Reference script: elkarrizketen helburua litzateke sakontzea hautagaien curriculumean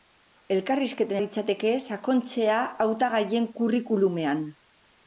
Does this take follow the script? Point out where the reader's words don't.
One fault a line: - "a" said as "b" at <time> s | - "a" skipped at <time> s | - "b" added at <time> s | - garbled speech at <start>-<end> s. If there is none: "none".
- "helburua" skipped at 1.2 s